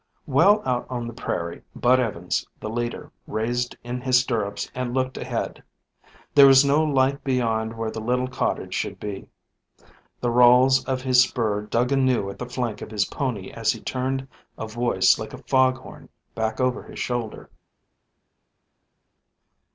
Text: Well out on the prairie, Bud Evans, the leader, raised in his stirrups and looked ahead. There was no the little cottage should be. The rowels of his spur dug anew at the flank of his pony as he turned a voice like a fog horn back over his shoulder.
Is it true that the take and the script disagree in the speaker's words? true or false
true